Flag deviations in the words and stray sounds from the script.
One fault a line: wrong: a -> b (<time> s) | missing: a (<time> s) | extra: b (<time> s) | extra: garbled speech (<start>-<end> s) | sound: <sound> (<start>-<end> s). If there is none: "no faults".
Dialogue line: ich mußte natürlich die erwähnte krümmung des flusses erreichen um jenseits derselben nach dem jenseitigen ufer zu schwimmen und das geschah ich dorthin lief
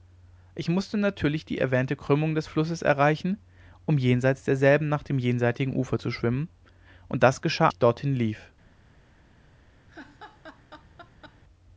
sound: laugh (9.9-11.4 s)